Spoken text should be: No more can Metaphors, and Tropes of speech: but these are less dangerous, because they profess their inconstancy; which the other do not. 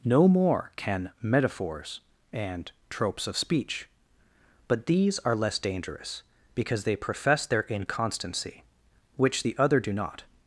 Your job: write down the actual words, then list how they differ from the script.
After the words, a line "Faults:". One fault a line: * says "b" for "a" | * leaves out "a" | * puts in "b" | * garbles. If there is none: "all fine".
No more can Metaphors, and Tropes of speech: but these are less dangerous, because they profess their inconstancy; which the other do not.
Faults:
all fine